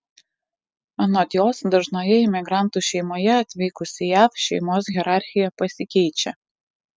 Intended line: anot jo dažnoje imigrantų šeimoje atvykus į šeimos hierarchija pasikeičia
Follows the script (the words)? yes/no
no